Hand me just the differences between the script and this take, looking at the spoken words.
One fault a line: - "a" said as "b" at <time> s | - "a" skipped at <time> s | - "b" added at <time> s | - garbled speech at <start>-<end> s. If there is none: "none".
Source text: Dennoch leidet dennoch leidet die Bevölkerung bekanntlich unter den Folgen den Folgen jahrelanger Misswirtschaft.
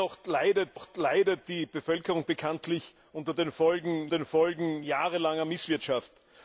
none